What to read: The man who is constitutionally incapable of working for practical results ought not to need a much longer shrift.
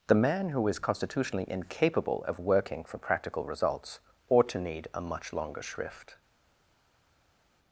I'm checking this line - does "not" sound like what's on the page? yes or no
no